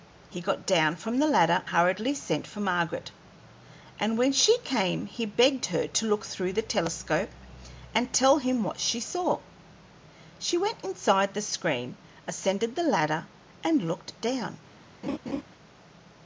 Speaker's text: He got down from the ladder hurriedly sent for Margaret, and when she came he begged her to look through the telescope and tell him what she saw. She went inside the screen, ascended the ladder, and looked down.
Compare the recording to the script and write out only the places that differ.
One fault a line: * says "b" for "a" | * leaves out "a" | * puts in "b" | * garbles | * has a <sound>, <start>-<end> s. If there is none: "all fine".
* has a laugh, 15.0-15.4 s